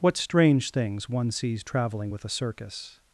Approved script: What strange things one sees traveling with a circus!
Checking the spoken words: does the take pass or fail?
pass